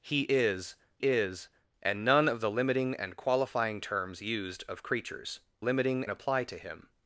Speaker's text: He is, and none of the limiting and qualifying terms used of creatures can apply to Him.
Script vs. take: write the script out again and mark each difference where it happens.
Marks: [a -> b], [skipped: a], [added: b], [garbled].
He is, [added: is] and none of the limiting and qualifying terms used of creatures [can -> limiting] apply to Him.